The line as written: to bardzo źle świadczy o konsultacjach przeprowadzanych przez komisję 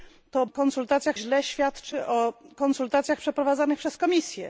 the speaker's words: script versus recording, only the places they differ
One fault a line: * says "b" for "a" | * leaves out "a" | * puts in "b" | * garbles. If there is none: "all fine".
* says "konsultacjach" for "bardzo"